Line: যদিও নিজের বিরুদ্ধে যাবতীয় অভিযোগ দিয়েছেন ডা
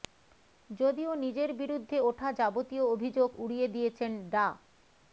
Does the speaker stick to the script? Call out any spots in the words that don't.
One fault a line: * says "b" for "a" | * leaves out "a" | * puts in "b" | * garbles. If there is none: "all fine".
* puts in "ওঠা"
* puts in "উড়িয়ে"